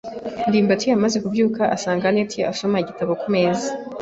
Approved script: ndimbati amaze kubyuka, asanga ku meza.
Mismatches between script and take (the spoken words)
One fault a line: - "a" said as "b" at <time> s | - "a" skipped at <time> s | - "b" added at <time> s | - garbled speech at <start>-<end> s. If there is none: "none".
- "anet asoma igitabo" added at 2.1 s